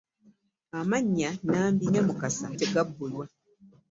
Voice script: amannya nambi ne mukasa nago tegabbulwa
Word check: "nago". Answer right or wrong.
wrong